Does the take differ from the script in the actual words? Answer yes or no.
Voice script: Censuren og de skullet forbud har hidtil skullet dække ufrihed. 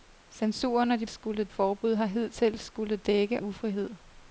no